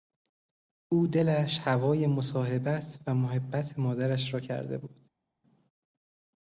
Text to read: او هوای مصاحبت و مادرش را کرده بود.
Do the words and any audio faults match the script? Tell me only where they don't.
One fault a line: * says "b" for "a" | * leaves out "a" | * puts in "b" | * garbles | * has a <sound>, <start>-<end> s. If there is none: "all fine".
* puts in "دلش"
* puts in "محبت"